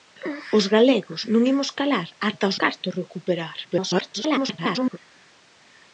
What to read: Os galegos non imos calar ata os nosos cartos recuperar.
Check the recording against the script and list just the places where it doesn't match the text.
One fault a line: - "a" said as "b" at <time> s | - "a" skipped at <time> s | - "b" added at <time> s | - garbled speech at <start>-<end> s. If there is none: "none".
- "nosos" skipped at 2.6 s
- garbled speech at 3.6-5.0 s